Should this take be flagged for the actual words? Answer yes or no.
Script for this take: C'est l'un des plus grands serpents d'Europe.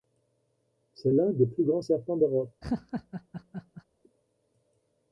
no